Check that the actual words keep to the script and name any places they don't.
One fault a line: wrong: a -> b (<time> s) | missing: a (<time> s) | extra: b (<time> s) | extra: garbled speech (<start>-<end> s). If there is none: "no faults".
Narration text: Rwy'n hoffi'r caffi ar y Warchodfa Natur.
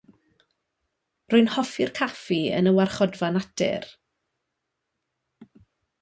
wrong: ar -> yn (2.6 s)